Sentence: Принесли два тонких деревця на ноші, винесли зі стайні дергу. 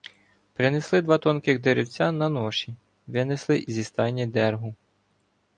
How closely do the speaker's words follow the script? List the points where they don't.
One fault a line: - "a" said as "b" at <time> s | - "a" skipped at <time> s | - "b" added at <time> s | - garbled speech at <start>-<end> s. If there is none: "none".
none